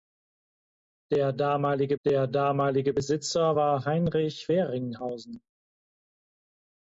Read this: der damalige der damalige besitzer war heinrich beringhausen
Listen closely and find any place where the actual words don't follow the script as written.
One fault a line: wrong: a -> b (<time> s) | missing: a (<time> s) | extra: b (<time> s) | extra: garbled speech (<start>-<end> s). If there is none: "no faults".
no faults